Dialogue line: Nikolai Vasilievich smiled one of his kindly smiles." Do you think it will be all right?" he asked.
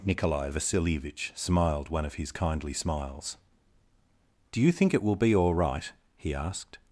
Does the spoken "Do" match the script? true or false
true